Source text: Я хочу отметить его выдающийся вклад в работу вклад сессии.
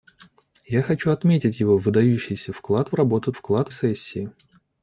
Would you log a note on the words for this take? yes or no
no